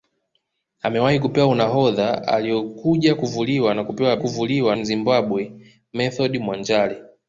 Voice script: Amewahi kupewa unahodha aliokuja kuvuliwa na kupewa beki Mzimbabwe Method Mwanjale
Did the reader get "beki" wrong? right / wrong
wrong